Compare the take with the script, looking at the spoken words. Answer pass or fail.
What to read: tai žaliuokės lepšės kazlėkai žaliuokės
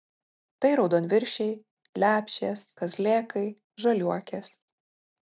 fail